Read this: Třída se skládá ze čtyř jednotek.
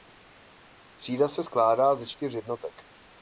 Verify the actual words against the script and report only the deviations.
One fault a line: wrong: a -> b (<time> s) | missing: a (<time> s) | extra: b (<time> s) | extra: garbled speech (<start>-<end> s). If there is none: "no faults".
no faults